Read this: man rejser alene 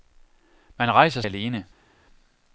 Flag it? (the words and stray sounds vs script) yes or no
no